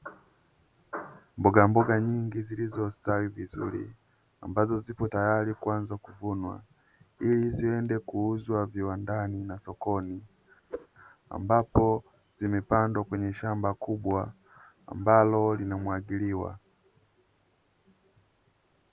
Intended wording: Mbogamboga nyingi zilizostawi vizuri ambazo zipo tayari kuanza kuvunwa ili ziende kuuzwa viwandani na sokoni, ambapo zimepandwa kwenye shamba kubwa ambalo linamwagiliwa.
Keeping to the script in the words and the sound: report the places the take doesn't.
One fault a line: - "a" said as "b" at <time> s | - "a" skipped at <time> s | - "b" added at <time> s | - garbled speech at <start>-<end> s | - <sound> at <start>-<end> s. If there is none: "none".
- whoosh at 10.7-10.9 s